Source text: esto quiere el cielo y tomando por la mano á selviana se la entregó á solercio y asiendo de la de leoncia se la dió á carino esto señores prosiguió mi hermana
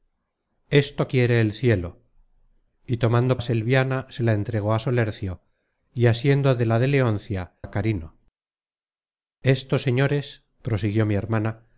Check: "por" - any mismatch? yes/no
yes